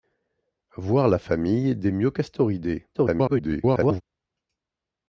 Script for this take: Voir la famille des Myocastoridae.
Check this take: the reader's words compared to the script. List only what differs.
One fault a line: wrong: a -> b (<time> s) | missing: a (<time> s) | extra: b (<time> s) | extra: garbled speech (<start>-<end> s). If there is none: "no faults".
extra: garbled speech (2.9-4.0 s)